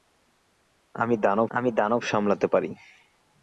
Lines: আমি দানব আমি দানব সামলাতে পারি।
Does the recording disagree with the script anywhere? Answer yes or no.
no